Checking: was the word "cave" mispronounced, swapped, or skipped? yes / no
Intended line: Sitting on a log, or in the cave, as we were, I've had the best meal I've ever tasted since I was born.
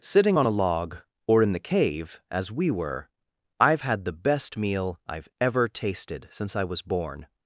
no